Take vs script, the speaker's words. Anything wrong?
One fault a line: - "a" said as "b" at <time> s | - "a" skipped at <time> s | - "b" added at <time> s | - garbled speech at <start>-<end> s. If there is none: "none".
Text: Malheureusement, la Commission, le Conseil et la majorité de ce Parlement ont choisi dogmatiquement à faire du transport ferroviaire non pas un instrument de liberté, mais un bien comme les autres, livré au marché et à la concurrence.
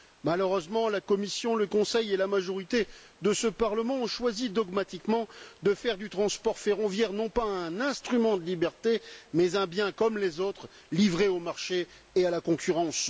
- "à" said as "de" at 5.6 s